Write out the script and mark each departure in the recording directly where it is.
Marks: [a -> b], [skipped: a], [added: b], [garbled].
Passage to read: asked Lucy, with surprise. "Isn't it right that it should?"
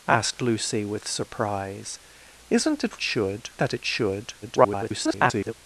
asked Lucy, with surprise. "Isn't it [right -> should] that it should?" [garbled]